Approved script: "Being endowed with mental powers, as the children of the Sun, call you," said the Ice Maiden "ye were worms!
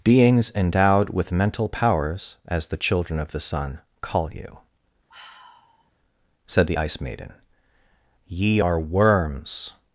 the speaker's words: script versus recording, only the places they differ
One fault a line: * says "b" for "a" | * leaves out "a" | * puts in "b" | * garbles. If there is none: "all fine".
* says "Beings" for "Being"
* says "are" for "were"